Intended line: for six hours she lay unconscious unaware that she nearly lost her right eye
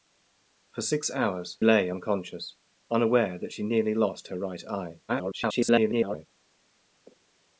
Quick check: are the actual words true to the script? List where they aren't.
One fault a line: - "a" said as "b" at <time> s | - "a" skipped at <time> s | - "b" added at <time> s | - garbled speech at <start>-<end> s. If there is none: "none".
- "she" skipped at 1.6 s
- garbled speech at 5.1-6.3 s